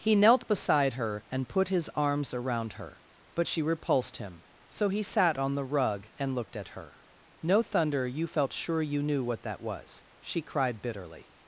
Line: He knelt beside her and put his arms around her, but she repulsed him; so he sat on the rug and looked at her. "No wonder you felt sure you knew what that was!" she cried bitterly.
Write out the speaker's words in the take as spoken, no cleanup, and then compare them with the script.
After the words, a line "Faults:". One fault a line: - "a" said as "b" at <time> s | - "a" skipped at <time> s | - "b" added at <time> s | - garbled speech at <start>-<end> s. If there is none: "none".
He knelt beside her and put his arms around her, but she repulsed him; so he sat on the rug and looked at her. "No thunder you felt sure you knew what that was!" she cried bitterly.
Faults:
- "wonder" said as "thunder" at 7.6 s